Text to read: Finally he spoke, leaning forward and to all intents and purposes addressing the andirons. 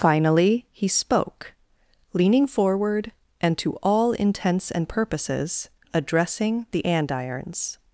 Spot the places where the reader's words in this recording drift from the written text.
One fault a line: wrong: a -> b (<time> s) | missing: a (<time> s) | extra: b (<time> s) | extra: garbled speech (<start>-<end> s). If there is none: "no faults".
no faults